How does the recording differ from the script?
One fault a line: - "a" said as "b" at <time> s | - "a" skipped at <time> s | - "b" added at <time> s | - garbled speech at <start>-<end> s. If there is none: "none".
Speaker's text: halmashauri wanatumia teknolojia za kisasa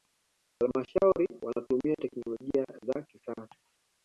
none